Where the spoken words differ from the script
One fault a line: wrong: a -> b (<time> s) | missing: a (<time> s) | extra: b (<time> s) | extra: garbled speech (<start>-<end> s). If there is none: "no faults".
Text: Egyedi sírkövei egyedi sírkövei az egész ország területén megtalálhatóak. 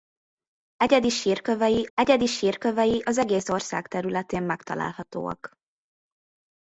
no faults